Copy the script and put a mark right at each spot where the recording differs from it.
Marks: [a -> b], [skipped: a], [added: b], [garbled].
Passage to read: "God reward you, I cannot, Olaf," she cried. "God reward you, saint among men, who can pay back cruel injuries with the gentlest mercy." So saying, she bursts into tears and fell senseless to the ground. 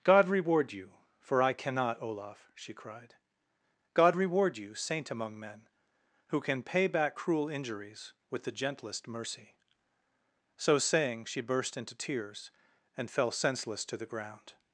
"God reward you, [added: for] I cannot, Olaf," she cried. "God reward you, saint among men, who can pay back cruel injuries with the gentlest mercy." So saying, she [bursts -> burst] into tears and fell senseless to the ground.